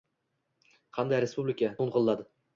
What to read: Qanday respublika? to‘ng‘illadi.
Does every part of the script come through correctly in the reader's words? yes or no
yes